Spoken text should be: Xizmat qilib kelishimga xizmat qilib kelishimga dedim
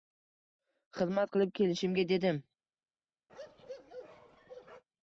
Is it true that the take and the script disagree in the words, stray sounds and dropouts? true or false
true